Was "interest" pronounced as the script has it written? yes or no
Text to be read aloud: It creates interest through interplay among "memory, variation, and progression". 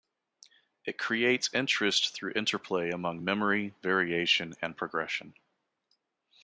yes